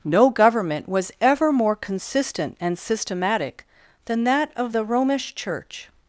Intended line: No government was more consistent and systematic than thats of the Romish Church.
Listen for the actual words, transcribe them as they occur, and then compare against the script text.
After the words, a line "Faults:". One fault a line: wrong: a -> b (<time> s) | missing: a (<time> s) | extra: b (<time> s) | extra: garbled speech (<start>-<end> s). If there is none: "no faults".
No government was ever more consistent and systematic than that of the Romish Church.
Faults:
extra: ever (1.2 s)
wrong: thats -> that (4.2 s)